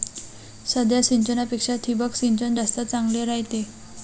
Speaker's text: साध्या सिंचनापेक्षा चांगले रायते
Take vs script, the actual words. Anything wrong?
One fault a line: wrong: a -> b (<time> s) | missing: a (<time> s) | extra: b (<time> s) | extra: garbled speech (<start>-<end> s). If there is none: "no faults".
extra: ठिबक सिंचन जास्त (1.8 s)